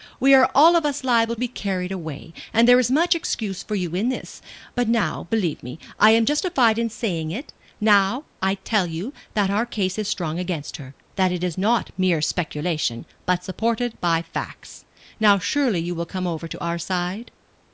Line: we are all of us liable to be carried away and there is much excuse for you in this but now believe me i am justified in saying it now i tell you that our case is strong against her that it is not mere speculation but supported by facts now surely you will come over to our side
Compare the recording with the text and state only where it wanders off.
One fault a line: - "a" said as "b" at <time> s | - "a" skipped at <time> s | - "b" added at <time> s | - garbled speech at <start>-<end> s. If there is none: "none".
- "to" skipped at 1.4 s